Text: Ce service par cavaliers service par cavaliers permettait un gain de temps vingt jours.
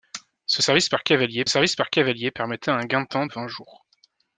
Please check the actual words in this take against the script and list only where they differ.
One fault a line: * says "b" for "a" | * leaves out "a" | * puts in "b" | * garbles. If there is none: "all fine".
all fine